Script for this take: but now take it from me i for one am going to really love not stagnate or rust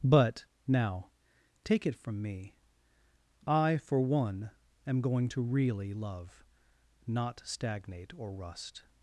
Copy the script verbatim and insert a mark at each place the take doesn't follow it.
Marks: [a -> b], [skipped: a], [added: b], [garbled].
but now take it from me i for one am going to really love not stagnate or rust